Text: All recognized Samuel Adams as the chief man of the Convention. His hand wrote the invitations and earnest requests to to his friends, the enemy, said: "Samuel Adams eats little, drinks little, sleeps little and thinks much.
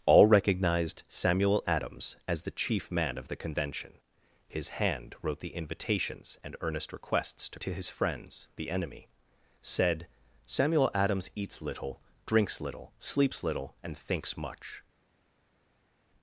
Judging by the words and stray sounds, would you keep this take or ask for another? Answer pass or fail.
pass